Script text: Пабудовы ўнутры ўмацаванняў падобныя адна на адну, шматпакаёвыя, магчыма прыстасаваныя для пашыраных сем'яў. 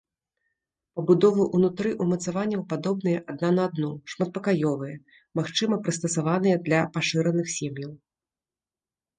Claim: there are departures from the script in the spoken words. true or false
false